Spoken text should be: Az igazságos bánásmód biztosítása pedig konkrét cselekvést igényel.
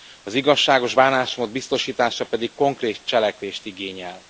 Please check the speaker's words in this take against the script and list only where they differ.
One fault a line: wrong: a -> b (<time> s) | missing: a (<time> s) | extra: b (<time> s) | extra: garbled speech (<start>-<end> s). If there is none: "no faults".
no faults